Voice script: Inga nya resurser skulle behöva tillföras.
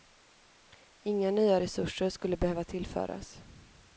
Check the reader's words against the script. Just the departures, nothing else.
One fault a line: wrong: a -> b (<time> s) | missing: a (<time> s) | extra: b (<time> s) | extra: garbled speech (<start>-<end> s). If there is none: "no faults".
no faults